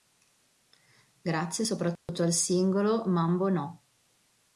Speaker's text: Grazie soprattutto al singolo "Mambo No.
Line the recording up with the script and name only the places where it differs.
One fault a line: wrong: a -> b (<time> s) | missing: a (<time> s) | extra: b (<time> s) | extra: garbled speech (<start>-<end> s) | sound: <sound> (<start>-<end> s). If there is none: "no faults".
sound: dropout (2.0-2.1 s)